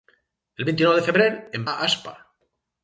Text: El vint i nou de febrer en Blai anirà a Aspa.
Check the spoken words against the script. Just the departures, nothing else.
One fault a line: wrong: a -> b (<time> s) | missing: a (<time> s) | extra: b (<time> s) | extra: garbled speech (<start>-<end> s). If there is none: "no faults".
missing: Blai anirà (1.7 s)